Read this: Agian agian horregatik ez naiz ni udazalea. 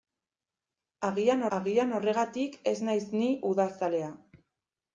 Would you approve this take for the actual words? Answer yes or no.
yes